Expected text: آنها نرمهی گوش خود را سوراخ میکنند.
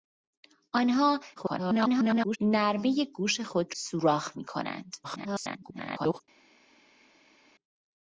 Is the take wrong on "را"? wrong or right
wrong